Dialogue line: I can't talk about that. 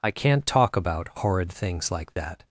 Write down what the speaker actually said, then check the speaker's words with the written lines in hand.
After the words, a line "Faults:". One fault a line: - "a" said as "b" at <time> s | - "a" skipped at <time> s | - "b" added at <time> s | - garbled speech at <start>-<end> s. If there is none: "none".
I can't talk about horrid things like that.
Faults:
- "horrid things like" added at 1.2 s